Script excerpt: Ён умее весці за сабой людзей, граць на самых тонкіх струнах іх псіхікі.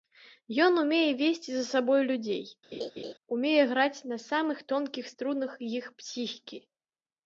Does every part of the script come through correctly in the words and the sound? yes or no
no